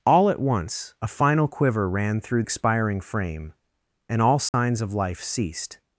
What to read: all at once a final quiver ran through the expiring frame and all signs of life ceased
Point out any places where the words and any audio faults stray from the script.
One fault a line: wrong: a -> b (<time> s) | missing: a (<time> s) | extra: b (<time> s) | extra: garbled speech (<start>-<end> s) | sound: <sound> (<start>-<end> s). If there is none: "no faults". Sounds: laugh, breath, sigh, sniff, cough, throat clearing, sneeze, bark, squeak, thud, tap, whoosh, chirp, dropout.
missing: the (2.4 s)
sound: dropout (4.5-4.5 s)